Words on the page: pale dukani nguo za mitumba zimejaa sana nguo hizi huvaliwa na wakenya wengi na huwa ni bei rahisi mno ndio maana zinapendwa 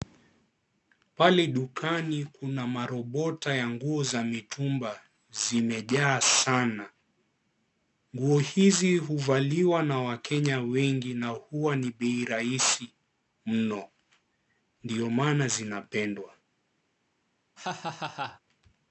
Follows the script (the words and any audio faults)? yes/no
no